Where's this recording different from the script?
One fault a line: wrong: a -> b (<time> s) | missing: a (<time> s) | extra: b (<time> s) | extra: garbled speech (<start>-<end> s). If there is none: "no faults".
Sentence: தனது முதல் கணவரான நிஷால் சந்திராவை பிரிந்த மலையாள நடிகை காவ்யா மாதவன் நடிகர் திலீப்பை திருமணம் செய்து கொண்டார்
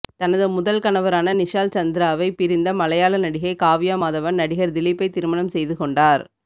no faults